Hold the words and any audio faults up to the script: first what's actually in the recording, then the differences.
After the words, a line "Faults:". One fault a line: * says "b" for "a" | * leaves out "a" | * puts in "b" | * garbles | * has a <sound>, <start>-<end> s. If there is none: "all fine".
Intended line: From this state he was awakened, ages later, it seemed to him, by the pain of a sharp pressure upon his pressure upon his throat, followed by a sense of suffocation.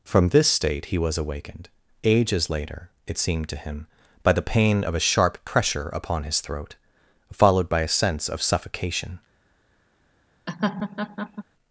From this state he was awakened, ages later, it seemed to him, by the pain of a sharp pressure upon his throat, followed by a sense of suffocation.
Faults:
* leaves out "pressure upon his"
* has a laugh, 10.5-11.4 s